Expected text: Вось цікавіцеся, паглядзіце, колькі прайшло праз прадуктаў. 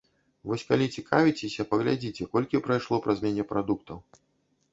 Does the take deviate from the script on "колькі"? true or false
false